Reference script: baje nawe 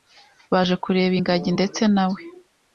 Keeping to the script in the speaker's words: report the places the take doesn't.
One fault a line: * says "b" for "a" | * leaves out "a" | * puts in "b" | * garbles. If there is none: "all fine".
* puts in "kureba ingagi ndetse"